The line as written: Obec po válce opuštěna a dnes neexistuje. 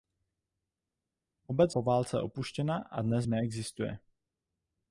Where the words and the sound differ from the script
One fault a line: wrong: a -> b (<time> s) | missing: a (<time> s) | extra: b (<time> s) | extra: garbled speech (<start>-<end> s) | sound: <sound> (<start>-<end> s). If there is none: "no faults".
no faults